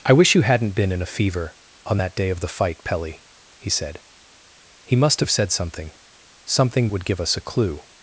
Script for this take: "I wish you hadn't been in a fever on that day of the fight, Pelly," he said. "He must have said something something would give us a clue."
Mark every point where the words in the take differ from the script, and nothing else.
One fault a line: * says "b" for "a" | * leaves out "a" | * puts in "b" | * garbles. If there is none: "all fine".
all fine